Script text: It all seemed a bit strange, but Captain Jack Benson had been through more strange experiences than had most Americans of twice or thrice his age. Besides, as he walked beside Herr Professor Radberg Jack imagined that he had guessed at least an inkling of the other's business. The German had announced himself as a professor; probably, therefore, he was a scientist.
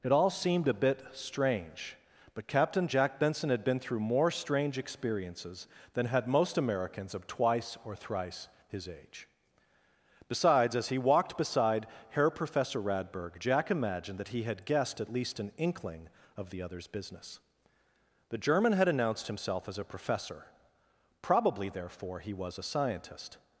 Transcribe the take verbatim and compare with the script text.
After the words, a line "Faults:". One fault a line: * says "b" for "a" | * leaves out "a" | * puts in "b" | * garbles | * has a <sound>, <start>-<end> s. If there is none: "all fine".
It all seemed a bit strange, but Captain Jack Benson had been through more strange experiences than had most Americans of twice or thrice his age. Besides, as he walked beside Herr Professor Radberg Jack imagined that he had guessed at least an inkling of the other's business. The German had announced himself as a professor; probably, therefore, he was a scientist.
Faults:
all fine